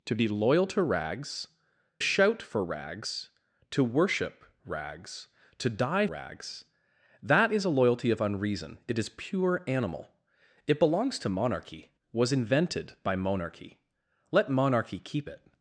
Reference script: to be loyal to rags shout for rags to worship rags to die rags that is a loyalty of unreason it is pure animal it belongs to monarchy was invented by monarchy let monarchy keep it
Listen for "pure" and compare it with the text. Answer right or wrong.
right